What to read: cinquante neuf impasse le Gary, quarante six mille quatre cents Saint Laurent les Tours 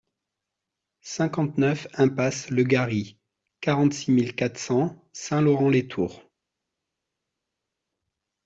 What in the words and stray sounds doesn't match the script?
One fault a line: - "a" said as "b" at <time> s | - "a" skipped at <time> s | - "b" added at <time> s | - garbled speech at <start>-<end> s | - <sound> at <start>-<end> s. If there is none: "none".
none